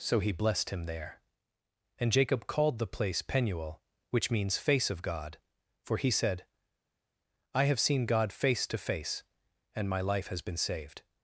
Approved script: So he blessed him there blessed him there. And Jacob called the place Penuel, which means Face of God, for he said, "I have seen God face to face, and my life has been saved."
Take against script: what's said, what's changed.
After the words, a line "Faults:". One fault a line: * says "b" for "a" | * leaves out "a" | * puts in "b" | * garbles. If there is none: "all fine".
So he blessed him there. And Jacob called the place Penuel, which means Face of God, for he said, "I have seen God face to face, and my life has been saved."
Faults:
* leaves out "blessed him there"